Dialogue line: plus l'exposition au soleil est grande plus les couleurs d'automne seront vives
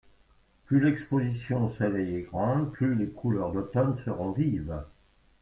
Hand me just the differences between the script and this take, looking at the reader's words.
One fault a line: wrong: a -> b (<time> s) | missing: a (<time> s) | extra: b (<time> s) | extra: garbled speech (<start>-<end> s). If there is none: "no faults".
no faults